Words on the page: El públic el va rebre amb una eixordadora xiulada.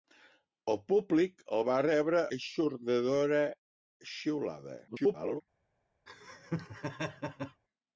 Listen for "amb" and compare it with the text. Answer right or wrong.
wrong